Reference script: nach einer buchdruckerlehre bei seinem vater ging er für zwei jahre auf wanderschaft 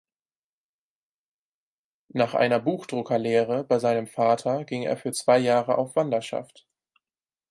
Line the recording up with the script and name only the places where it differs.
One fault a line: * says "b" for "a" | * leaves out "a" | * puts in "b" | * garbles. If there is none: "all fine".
all fine